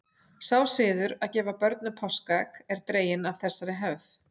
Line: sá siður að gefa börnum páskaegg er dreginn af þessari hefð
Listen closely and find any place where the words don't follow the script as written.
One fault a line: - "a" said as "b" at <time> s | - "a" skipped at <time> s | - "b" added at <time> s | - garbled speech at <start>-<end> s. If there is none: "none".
none